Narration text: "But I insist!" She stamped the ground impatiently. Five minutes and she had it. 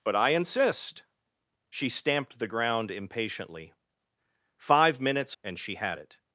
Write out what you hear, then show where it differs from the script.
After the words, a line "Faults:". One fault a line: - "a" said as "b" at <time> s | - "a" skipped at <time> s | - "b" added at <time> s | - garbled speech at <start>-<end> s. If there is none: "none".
"But I insist!" She stamped the ground impatiently. Five minutes and she had it.
Faults:
none